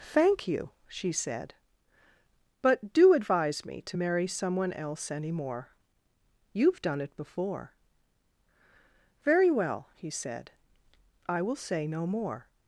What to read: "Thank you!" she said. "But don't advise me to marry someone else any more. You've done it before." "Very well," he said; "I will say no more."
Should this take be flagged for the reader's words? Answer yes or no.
yes